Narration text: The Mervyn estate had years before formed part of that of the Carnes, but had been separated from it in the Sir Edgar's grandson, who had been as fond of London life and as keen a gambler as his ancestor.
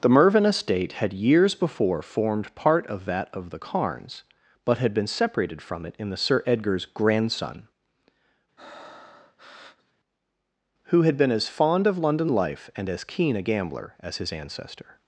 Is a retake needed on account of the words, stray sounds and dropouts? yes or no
yes